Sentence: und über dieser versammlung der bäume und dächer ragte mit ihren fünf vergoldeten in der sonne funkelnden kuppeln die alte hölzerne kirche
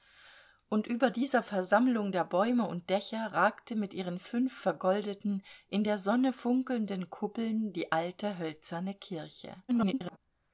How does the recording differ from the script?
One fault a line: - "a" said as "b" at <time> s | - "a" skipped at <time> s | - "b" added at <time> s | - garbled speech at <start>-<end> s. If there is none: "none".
- garbled speech at 9.7-10.2 s